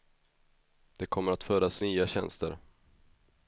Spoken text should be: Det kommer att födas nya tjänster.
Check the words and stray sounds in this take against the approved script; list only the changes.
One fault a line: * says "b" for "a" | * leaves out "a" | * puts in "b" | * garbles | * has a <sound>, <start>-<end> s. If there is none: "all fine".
all fine